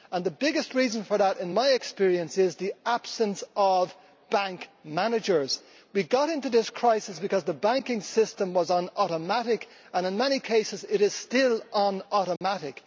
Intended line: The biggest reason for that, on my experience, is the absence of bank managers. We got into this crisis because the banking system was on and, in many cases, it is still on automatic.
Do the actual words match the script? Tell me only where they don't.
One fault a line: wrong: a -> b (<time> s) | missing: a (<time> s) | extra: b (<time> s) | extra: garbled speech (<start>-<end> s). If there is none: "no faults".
wrong: on -> in (1.4 s)
extra: automatic (9.0 s)